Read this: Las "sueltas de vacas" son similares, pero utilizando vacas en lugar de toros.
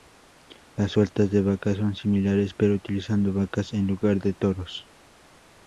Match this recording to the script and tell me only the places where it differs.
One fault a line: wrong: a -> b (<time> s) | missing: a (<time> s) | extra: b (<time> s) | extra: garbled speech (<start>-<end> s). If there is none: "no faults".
no faults